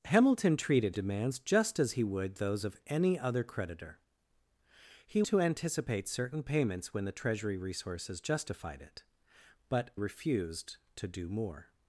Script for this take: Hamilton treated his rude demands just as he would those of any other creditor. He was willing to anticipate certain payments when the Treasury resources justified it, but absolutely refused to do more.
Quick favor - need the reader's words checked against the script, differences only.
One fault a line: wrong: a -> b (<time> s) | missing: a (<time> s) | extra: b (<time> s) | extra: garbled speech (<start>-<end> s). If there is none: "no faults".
missing: his rude (0.9 s)
missing: was willing (5.2 s)
missing: absolutely (9.9 s)